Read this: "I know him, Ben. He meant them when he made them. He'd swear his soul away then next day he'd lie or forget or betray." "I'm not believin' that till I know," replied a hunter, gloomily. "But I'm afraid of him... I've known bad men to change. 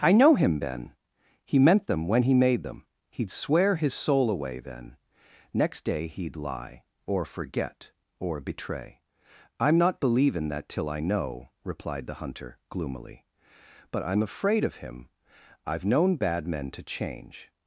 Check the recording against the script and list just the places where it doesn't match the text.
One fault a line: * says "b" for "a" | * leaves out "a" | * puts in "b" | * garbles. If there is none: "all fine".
* says "the" for "a"